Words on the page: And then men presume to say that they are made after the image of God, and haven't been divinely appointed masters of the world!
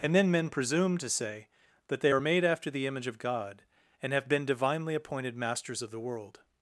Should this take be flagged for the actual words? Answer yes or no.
yes